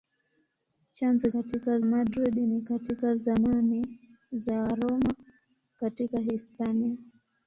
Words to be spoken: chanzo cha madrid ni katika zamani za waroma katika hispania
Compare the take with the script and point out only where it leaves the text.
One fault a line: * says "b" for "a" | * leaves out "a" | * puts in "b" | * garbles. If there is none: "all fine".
* says "katika" for "cha"